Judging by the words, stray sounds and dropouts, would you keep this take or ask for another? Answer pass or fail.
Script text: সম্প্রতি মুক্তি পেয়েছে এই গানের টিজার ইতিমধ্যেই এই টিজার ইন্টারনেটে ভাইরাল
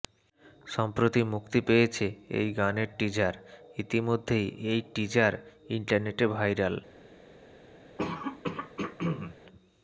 fail